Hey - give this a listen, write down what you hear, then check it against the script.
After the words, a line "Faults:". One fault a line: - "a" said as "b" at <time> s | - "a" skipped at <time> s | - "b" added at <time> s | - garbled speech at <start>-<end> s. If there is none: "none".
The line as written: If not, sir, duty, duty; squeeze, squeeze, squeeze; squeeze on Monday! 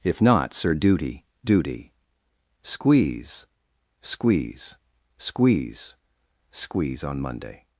If not, sir, duty, duty; squeeze, squeeze, squeeze; squeeze on Monday!
Faults:
none